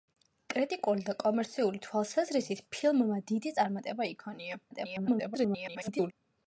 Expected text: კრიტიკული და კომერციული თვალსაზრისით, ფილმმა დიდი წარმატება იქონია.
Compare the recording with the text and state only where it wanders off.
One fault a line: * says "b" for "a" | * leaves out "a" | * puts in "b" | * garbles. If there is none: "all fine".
* garbles